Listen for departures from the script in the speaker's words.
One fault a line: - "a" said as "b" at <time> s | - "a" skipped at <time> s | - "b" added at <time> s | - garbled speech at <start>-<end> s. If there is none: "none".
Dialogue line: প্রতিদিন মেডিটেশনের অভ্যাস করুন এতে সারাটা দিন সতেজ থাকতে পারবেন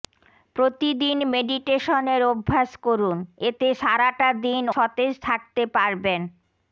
none